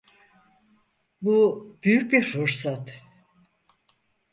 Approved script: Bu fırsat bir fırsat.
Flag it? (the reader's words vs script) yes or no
yes